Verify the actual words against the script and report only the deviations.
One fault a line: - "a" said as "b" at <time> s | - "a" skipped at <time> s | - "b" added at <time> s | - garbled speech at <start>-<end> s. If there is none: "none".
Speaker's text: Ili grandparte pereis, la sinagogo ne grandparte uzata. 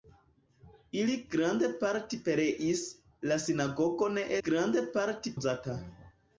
none